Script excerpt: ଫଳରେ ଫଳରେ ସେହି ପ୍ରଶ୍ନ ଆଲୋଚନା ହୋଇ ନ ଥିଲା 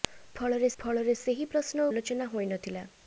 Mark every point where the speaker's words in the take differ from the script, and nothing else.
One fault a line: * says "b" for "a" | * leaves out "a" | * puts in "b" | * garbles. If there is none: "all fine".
all fine